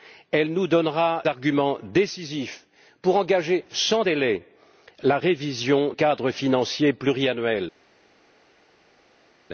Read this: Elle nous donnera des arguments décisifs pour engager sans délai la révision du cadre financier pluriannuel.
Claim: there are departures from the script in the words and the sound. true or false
true